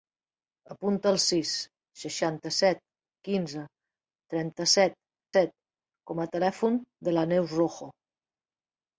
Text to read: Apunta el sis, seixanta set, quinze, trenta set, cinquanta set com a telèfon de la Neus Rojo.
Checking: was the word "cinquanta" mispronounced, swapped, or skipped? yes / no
yes